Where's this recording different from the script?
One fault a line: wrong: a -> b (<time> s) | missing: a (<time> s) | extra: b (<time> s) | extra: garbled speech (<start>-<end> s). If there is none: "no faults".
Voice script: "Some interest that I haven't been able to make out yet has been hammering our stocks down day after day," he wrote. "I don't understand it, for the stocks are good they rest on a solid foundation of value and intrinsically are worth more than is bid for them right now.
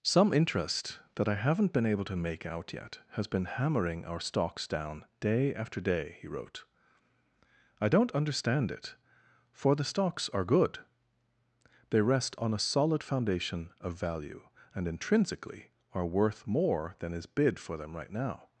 no faults